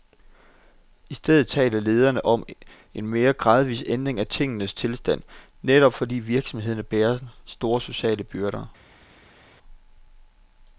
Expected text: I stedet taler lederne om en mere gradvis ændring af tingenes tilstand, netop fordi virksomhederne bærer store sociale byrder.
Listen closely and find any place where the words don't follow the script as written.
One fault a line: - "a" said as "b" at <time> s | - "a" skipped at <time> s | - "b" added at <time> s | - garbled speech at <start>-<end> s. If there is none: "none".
none